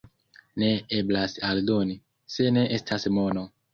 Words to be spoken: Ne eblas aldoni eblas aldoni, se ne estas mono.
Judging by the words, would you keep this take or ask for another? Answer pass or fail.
fail